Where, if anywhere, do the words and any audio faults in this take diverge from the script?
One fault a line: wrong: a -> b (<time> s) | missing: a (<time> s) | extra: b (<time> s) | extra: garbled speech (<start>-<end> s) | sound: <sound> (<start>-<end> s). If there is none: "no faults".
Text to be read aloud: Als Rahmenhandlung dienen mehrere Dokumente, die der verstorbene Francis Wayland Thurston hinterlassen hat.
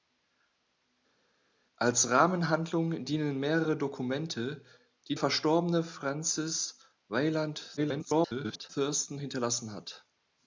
missing: der (5.2 s)
extra: garbled speech (7.8-8.7 s)